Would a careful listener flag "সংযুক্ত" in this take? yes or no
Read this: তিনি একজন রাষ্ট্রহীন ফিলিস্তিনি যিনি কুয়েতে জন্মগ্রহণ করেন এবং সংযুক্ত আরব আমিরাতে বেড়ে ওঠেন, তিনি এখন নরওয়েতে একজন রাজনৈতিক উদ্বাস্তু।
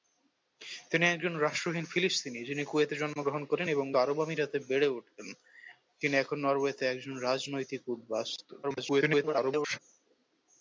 yes